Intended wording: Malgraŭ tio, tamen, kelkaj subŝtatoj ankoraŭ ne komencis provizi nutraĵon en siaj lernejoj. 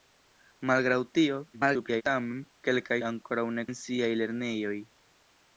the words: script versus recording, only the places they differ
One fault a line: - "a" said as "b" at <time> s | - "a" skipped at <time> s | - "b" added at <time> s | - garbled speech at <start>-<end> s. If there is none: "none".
- garbled speech at 1.5-2.0 s
- "subŝtatoj" skipped at 3.0 s
- "komencis provizi nutraĵon" skipped at 3.6 s